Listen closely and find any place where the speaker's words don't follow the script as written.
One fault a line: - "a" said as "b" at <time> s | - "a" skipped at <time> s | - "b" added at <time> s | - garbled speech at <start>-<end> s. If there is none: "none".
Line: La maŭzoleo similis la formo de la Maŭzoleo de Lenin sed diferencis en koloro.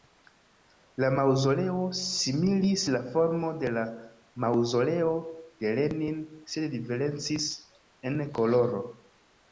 none